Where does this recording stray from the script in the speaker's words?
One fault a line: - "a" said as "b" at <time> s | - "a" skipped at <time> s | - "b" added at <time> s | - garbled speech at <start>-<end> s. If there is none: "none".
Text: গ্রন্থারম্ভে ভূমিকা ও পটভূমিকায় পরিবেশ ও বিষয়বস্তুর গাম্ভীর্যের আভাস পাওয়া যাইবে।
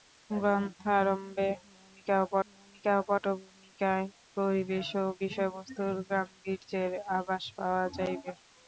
- "ভূমিকা ও" added at 2.5 s